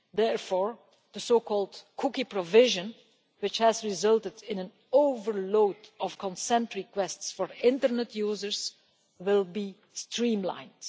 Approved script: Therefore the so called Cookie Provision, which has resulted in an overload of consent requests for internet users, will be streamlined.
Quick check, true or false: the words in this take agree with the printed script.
true